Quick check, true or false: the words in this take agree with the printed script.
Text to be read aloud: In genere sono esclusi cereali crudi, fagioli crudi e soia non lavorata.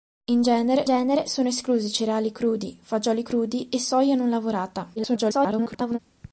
false